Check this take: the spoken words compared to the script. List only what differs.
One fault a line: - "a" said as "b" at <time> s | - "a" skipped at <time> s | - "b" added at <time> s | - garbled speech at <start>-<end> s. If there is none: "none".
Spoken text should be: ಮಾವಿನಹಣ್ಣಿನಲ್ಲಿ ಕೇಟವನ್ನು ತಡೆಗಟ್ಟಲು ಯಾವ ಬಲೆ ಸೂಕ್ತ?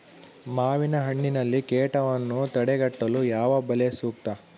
none